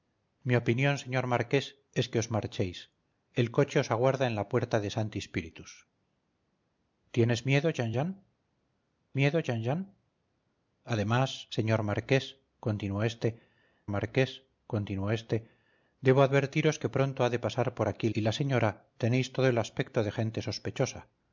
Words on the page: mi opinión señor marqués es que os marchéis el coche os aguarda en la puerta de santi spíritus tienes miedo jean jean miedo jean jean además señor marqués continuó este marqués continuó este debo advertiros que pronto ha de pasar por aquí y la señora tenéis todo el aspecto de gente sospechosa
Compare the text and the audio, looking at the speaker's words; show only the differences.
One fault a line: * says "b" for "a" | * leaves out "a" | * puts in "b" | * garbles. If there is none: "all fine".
all fine